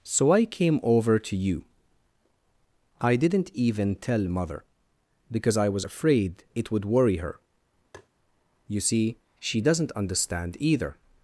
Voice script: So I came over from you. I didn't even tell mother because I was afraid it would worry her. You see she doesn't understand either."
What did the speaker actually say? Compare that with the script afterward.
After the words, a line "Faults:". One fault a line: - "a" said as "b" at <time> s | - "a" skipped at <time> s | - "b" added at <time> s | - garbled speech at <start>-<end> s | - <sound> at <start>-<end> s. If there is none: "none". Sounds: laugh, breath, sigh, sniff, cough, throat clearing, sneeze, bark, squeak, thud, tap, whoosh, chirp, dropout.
So I came over to you. I didn't even tell mother because I was afraid it would worry her. You see she doesn't understand either."
Faults:
- "from" said as "to" at 1.2 s
- tap at 7.9-8.1 s